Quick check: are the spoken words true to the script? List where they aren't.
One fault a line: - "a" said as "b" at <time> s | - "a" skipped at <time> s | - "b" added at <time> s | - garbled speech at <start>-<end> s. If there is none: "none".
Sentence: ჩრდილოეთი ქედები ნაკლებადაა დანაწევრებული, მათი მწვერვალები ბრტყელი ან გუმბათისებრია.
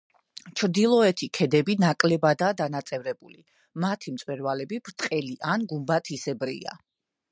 none